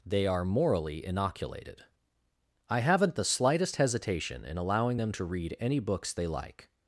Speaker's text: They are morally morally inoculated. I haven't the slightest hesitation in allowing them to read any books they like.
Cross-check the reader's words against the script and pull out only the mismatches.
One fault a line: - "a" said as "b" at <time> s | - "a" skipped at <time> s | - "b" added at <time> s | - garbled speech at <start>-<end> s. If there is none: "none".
- "morally" skipped at 1.1 s